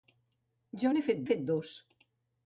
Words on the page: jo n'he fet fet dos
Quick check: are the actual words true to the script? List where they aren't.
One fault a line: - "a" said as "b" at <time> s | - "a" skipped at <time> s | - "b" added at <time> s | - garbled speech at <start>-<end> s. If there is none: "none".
none